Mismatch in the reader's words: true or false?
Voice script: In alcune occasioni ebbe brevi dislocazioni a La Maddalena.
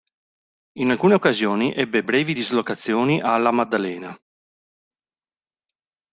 false